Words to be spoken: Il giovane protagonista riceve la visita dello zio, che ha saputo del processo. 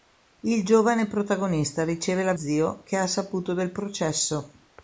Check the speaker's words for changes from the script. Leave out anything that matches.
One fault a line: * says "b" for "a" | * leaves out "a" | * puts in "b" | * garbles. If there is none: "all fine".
* leaves out "visita dello"